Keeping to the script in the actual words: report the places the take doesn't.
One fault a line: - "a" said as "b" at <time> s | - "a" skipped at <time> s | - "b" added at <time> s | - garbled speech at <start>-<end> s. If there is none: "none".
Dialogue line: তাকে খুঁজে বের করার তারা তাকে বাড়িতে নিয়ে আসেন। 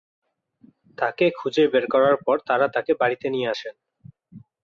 - "পর" added at 2.2 s